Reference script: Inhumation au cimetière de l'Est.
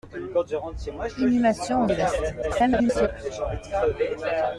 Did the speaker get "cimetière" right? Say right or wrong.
wrong